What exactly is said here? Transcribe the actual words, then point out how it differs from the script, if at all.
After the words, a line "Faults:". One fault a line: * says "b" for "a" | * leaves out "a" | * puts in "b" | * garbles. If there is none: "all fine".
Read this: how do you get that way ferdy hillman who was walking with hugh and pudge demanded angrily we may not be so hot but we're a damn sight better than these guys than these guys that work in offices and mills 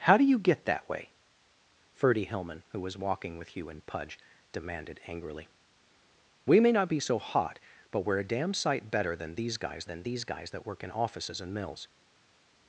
how do you get that way ferdy hillman who was walking with hugh and pudge demanded angrily we may not be so hot but we're a damn sight better than these guys than these guys that work in offices and mills
Faults:
all fine